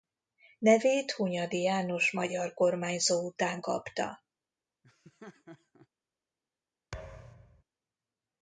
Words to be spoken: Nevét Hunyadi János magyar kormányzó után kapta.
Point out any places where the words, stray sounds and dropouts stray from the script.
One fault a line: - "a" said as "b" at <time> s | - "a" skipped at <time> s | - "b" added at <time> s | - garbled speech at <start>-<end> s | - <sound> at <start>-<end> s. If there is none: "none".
- laugh at 4.8-5.9 s
- thud at 6.9-7.6 s